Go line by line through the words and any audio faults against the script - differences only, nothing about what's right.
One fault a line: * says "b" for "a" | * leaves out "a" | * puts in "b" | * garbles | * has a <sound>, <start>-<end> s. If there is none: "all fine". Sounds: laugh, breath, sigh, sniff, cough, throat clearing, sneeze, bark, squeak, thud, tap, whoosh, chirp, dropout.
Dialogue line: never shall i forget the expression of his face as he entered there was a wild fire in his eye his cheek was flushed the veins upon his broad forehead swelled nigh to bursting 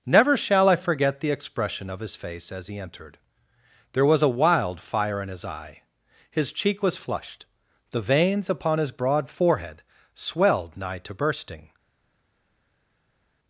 all fine